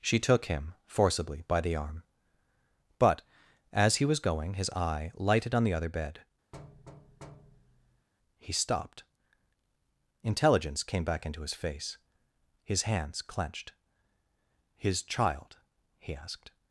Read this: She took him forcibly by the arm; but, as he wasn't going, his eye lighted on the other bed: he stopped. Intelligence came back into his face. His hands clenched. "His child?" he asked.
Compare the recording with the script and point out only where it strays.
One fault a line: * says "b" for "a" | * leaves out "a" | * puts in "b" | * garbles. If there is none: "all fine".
* says "was" for "wasn't"